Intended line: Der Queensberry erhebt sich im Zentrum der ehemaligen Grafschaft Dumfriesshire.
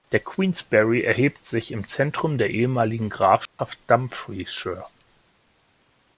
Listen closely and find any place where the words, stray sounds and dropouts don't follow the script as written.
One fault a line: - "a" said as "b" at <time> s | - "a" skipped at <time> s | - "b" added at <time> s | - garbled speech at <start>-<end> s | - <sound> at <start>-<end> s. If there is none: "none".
- dropout at 3.4-3.6 s